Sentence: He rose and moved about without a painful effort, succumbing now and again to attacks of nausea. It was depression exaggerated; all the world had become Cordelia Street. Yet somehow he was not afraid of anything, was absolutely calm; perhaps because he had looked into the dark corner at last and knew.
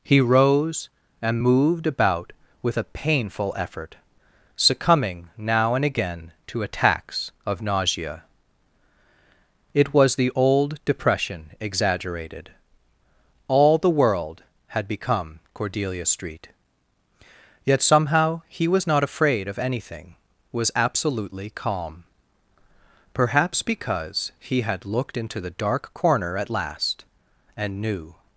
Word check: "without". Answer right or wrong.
wrong